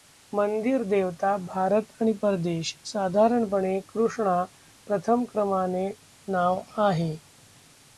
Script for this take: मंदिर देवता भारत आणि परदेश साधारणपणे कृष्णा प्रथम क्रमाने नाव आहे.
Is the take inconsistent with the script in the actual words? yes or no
no